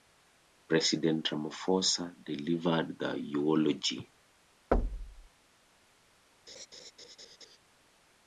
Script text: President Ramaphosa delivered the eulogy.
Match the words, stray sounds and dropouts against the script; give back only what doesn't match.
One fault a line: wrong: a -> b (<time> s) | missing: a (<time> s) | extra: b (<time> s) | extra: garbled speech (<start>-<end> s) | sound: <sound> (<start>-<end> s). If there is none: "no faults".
sound: thud (4.7-5.3 s)
sound: laugh (6.5-7.6 s)